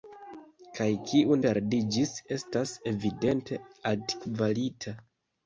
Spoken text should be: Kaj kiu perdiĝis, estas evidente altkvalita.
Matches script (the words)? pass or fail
pass